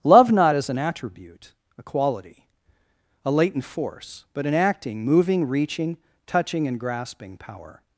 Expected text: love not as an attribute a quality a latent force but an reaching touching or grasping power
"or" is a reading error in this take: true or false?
true